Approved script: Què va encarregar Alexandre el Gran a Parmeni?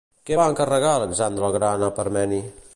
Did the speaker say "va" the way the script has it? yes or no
yes